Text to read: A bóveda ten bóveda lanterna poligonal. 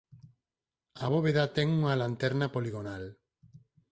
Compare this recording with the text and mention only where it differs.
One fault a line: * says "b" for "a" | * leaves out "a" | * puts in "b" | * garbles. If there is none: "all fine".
* says "unha" for "bóveda"